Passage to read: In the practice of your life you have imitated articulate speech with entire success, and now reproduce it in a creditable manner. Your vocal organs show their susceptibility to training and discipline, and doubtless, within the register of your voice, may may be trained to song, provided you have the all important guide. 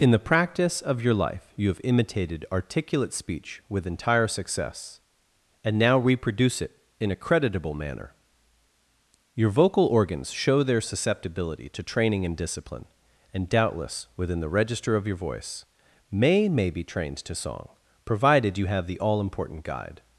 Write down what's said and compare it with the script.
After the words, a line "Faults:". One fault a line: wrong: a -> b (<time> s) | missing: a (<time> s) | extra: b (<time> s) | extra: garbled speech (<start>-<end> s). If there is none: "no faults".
In the practice of your life you have imitated articulate speech with entire success, and now reproduce it in a creditable manner. Your vocal organs show their susceptibility to training and discipline, and doubtless, within the register of your voice, may may be trained to song, provided you have the all important guide.
Faults:
no faults